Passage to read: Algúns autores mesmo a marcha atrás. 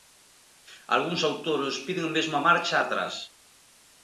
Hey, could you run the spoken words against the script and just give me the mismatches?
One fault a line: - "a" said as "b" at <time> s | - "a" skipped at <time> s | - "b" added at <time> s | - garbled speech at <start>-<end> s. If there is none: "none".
- "piden" added at 1.9 s